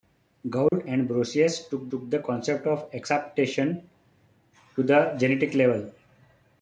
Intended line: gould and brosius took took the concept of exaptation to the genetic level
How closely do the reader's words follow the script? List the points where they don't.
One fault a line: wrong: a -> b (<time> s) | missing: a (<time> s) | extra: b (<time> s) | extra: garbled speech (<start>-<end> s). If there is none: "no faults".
no faults